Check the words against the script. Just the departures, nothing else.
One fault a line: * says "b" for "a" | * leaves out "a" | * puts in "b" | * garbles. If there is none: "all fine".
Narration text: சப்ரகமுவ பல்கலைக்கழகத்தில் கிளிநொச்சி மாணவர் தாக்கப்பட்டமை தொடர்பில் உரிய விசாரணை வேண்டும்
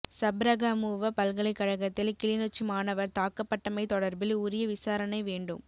all fine